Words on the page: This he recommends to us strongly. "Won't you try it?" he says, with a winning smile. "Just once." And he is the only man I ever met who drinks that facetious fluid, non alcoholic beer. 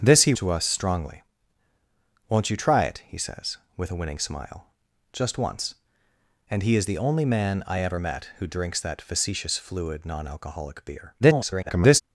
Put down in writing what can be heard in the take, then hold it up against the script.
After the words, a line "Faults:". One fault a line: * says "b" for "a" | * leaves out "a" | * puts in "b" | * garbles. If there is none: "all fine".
This he to us strongly. "Won't you try it?" he says, with a winning smile. "Just once." And he is the only man I ever met who drinks that facetious fluid, non alcoholic beer. [garbled]
Faults:
* leaves out "recommends"
* garbles